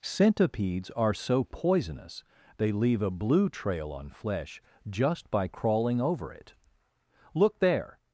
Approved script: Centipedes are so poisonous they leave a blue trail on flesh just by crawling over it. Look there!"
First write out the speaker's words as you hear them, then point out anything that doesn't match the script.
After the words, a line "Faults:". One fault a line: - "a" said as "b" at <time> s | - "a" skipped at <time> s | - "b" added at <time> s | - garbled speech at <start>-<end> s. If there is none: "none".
Centipedes are so poisonous they leave a blue trail on flesh just by crawling over it. Look there!"
Faults:
none